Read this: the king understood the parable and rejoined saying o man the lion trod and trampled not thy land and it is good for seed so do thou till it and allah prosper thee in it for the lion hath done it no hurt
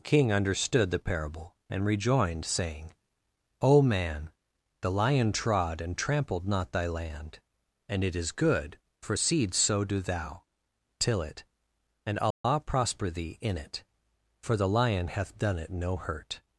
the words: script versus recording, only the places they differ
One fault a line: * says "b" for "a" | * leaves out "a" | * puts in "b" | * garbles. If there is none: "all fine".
* leaves out "the"